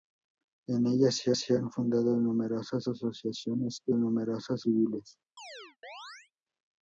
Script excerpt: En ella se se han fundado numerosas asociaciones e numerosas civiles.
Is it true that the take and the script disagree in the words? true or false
false